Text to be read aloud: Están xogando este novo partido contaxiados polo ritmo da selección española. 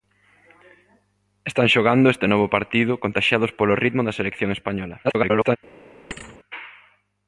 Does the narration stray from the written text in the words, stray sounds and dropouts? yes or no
yes